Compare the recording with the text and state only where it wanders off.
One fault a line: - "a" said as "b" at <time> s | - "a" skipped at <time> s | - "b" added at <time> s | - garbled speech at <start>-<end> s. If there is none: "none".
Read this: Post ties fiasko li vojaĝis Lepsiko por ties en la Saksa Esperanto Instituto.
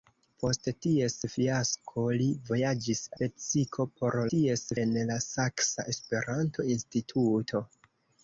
none